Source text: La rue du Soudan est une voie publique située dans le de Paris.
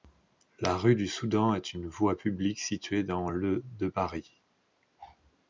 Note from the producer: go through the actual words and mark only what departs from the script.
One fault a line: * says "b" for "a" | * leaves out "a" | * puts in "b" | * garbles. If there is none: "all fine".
all fine